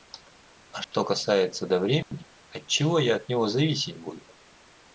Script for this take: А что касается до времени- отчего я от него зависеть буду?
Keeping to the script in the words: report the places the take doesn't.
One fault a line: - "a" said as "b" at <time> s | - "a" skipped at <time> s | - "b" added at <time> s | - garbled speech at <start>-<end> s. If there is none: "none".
none